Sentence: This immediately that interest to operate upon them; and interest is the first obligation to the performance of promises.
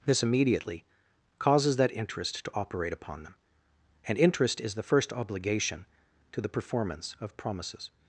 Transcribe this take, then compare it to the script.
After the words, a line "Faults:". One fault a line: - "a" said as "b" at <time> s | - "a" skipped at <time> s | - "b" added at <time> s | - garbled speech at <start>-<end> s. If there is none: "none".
This immediately causes that interest to operate upon them; and interest is the first obligation to the performance of promises.
Faults:
- "causes" added at 1.4 s